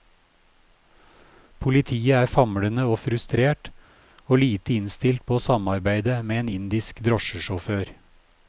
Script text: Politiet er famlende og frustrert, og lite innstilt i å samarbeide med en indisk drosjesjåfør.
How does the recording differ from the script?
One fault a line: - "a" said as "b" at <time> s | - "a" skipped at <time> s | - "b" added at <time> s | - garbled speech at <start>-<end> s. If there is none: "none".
- "i" said as "på" at 5.2 s